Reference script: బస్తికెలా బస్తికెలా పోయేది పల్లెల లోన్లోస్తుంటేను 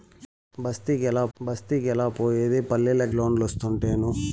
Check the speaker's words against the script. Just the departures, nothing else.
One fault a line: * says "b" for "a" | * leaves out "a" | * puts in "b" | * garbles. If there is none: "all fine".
all fine